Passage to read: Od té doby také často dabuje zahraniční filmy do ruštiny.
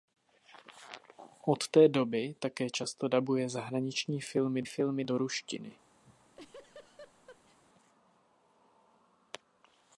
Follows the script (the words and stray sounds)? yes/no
no